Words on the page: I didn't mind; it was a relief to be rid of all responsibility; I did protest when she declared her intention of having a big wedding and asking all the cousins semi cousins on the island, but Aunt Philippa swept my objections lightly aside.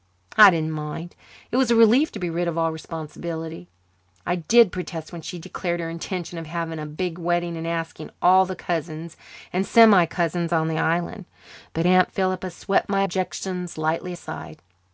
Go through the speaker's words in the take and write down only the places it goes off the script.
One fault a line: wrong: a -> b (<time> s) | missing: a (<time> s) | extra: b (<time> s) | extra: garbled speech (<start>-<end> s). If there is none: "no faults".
extra: and (9.5 s)